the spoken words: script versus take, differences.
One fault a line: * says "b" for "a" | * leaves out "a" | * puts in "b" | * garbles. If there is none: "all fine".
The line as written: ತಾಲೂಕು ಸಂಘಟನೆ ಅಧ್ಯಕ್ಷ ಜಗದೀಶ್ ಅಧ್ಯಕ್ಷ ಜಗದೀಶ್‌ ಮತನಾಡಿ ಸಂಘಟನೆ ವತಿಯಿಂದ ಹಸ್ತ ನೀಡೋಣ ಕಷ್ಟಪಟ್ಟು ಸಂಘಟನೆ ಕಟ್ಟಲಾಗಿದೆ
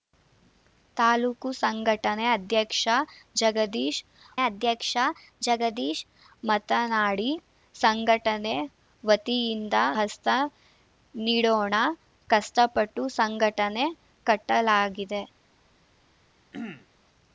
all fine